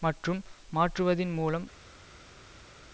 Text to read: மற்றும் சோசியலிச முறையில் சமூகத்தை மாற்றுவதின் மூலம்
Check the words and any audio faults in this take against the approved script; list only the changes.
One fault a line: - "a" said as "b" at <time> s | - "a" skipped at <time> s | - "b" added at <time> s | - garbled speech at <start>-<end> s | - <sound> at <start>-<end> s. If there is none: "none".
- "சோசியலிச முறையில் சமூகத்தை" skipped at 0.4 s